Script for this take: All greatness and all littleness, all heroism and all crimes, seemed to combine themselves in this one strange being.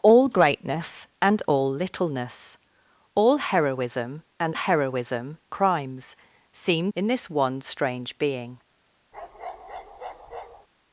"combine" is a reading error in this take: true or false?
true